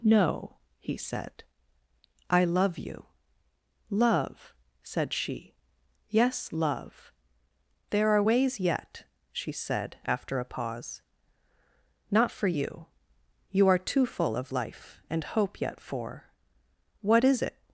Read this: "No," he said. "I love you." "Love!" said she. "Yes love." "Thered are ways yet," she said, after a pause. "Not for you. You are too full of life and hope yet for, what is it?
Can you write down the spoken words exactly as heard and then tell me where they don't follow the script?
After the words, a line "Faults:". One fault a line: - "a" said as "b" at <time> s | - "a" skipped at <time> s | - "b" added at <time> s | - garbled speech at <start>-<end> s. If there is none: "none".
"No," he said. "I love you." "Love!" said she. "Yes love." "There are ways yet," she said, after a pause. "Not for you. You are too full of life and hope yet for, what is it?
Faults:
- "Thered" said as "There" at 7.9 s